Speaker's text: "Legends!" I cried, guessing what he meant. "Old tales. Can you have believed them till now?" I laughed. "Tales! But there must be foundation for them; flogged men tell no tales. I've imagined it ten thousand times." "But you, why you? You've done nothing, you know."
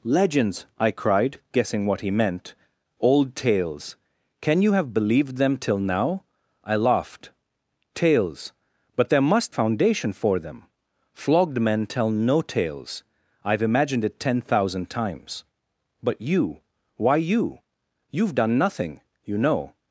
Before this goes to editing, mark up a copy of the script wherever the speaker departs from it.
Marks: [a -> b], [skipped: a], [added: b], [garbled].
"Legends!" I cried, guessing what he meant. "Old tales. Can you have believed them till now?" I laughed. "Tales! But there must [skipped: be] foundation for them; flogged men tell no tales. I've imagined it ten thousand times." "But you, why you? You've done nothing, you know."